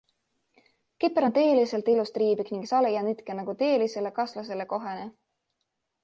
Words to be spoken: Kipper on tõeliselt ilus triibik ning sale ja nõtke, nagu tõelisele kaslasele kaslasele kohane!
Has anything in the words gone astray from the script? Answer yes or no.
yes